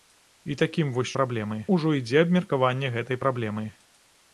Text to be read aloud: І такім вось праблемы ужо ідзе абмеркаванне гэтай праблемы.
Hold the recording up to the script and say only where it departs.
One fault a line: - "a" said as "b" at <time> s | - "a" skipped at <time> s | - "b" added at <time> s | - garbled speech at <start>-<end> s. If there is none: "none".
none